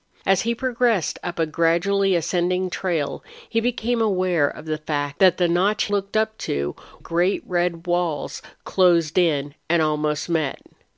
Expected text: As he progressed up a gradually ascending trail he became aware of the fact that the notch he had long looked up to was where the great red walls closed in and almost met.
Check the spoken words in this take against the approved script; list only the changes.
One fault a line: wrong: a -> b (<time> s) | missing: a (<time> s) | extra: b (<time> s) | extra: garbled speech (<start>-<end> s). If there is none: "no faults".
missing: he had long (5.8 s)
missing: was where the (6.7 s)